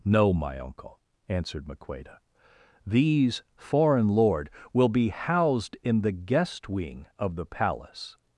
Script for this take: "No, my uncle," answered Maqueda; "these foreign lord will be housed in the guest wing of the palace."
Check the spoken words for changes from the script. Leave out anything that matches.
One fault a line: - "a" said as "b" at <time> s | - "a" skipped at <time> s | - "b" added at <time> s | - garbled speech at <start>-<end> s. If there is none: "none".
none